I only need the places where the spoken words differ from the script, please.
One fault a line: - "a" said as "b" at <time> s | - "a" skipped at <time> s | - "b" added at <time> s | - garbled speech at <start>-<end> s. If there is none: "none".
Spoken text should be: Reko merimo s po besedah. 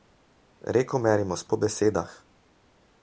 none